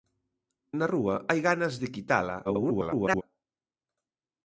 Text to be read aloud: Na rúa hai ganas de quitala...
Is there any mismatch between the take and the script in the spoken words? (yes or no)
yes